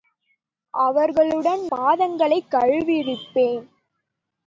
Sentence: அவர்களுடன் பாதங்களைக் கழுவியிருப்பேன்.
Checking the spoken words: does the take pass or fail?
pass